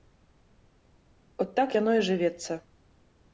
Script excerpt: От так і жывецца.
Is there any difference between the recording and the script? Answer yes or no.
yes